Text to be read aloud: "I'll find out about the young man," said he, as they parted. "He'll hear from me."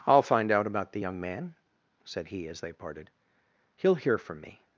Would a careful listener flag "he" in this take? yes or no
no